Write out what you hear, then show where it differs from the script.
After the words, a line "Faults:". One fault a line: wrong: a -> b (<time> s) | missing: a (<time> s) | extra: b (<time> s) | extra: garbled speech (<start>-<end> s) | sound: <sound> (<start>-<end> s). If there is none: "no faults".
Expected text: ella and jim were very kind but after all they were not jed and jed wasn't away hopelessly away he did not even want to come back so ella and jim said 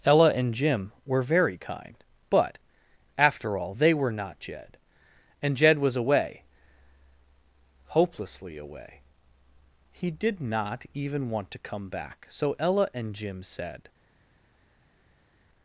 ella and jim were very kind but after all they were not jed and jed was away hopelessly away he did not even want to come back so ella and jim said
Faults:
wrong: wasn't -> was (5.8 s)